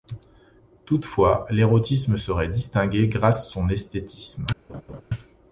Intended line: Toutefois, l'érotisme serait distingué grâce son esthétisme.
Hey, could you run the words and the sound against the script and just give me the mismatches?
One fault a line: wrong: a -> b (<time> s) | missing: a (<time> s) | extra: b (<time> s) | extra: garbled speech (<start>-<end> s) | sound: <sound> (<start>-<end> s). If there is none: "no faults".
sound: laugh (4.7-5.0 s)